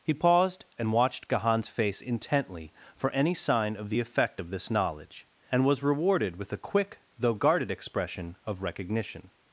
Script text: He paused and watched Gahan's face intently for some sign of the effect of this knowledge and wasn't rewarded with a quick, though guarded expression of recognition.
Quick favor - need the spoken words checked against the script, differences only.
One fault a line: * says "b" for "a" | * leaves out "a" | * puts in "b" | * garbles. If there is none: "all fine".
* says "any" for "some"
* says "was" for "wasn't"